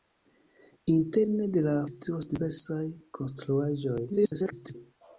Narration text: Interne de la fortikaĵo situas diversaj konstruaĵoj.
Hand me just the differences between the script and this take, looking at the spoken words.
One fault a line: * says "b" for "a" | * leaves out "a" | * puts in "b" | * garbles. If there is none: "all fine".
* leaves out "fortikaĵo"
* garbles